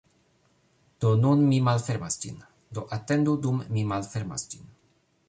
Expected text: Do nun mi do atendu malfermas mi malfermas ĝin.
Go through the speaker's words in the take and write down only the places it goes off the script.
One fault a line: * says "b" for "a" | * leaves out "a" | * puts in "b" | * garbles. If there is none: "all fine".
* puts in "malfermas ĝin"
* says "dum" for "malfermas"